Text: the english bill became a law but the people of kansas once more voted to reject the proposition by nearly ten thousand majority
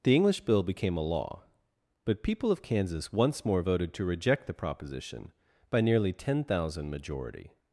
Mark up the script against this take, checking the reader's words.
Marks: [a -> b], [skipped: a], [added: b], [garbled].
the english bill became a law but [skipped: the] people of kansas once more voted to reject the proposition by nearly ten thousand majority